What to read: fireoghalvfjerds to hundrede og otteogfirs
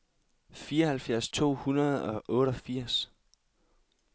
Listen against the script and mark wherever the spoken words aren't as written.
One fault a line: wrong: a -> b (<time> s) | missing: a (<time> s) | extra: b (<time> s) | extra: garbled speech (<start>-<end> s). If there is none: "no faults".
no faults